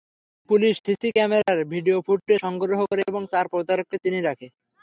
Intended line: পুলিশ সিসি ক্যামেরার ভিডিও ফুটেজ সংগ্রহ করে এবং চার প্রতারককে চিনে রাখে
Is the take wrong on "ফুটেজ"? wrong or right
right